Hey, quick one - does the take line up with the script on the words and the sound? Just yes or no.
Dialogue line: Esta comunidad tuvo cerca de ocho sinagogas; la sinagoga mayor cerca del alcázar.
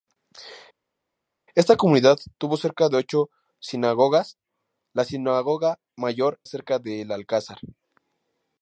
yes